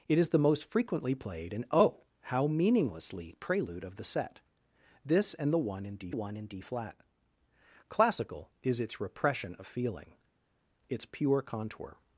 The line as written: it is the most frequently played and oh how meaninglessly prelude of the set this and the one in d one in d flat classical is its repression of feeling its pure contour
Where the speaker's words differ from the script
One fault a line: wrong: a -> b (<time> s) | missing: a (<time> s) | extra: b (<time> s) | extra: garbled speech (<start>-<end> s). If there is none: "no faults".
no faults